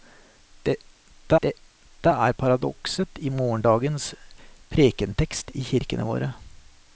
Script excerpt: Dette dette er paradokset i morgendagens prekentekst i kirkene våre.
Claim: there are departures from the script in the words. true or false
false